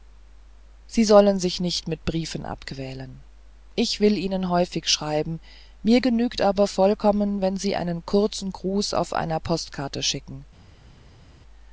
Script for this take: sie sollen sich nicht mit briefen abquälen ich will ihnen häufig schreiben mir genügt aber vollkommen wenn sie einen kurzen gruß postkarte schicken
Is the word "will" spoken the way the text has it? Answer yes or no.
yes